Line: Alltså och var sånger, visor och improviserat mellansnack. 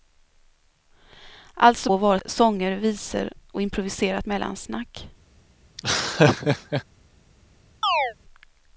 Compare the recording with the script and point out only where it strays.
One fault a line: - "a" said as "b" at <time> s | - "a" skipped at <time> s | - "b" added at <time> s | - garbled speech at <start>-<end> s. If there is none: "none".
none